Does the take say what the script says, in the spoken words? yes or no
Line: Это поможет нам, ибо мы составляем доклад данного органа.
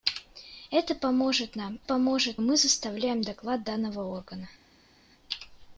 no